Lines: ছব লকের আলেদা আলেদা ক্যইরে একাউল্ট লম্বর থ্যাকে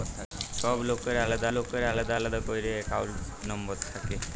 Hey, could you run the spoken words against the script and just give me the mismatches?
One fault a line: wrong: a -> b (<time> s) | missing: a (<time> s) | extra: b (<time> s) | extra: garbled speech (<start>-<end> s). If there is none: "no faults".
extra: লকের আলেদা (1.5 s)